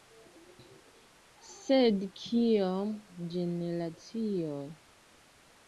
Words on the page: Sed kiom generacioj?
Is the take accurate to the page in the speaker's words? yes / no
yes